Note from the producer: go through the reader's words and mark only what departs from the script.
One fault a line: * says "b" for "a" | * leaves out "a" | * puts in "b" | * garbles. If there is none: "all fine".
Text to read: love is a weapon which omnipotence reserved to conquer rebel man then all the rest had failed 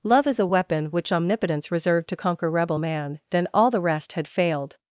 all fine